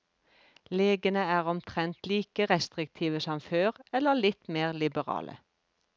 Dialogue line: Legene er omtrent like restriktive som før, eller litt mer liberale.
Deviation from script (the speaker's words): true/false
false